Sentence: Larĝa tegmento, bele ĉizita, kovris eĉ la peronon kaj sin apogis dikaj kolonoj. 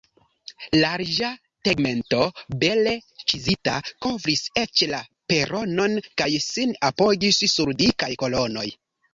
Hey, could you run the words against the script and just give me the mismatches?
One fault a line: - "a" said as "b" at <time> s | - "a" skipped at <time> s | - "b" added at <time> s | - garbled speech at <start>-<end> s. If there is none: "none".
- "sur" added at 7.6 s